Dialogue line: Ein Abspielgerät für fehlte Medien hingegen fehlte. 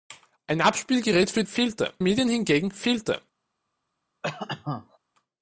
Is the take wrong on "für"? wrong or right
right